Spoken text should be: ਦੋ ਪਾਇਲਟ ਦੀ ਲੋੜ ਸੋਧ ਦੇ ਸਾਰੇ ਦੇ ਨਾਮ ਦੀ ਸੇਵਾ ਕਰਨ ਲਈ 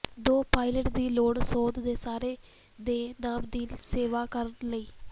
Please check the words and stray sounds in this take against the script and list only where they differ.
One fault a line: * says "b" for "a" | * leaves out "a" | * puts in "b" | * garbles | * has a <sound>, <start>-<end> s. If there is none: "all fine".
all fine